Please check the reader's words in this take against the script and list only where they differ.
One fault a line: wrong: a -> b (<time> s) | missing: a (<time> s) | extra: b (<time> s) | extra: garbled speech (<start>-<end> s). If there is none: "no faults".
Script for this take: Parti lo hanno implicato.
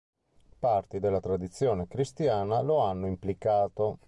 extra: della tradizione cristiana (1.0 s)